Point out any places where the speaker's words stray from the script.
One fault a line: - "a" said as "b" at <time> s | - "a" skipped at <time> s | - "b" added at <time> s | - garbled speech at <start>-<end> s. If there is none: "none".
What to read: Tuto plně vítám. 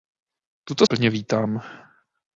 none